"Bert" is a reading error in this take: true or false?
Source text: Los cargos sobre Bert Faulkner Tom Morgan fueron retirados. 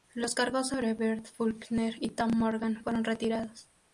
false